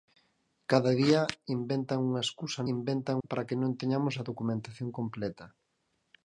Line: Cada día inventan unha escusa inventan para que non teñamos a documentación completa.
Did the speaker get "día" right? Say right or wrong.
right